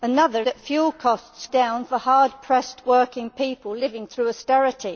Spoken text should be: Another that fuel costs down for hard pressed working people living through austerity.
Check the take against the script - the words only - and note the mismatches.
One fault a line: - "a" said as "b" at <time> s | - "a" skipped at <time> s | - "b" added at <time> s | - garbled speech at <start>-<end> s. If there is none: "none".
none